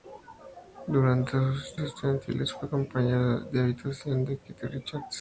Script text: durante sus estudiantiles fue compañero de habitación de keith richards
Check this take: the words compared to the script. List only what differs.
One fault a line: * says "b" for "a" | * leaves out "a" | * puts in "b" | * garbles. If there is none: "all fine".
all fine